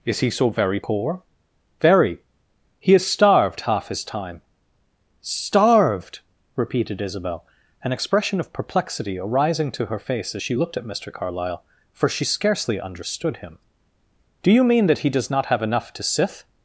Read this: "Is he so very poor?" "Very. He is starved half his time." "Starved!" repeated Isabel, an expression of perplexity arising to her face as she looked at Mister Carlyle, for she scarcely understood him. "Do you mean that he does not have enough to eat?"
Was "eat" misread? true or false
true